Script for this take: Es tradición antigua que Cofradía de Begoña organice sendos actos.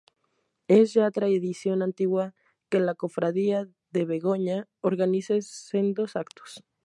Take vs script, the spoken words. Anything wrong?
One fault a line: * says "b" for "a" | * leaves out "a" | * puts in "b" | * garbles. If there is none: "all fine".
* puts in "ya"
* puts in "la"